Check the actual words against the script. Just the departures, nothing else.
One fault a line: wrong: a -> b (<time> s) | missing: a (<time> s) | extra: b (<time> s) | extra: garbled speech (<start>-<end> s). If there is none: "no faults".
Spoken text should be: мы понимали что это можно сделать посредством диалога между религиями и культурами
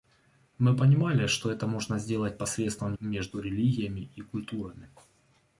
missing: диалога (3.0 s)